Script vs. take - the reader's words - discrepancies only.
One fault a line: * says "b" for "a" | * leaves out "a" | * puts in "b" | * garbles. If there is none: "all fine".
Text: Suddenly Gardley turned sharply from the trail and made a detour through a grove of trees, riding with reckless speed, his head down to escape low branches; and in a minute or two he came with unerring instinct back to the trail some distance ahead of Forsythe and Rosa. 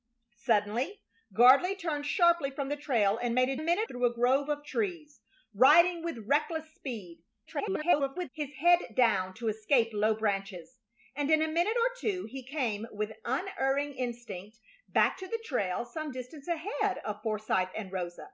* says "minute" for "detour"
* garbles